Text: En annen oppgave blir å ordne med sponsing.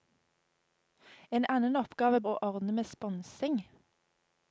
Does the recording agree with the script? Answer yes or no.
no